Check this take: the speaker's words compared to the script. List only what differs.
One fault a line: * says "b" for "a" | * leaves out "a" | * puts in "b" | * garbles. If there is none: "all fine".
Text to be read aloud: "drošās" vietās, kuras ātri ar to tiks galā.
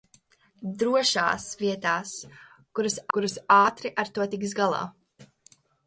* puts in "kuras"